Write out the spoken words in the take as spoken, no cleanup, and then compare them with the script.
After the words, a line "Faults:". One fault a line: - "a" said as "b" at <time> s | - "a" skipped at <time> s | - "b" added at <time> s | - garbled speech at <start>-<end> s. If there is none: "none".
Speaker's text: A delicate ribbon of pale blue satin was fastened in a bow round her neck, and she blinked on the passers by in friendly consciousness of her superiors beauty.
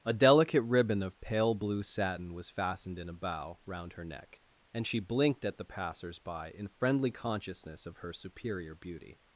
A delicate ribbon of pale blue satin was fastened in a bow round her neck, and she blinked at the passers by in friendly consciousness of her superior beauty.
Faults:
- "on" said as "at" at 5.5 s
- "superiors" said as "superior" at 8.1 s